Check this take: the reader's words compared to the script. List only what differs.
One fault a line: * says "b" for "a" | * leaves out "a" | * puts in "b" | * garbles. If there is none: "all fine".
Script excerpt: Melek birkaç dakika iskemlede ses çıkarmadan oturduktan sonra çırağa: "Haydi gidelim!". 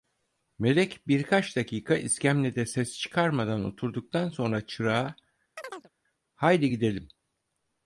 all fine